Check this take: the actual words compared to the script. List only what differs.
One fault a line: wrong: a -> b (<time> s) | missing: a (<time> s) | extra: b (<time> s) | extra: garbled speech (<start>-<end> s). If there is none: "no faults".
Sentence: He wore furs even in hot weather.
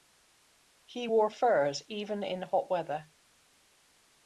no faults